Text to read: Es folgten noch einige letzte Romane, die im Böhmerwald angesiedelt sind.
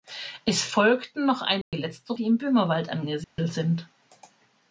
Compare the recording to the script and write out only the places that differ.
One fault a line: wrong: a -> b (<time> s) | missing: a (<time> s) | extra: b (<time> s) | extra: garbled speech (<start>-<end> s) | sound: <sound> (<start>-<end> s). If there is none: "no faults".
sound: dropout (1.6-1.7 s)
missing: Romane (2.1 s)
sound: dropout (3.2-3.4 s)